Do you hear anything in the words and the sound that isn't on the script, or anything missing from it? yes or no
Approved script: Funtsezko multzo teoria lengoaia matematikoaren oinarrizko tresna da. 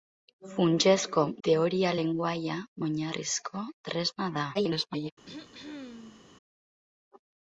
yes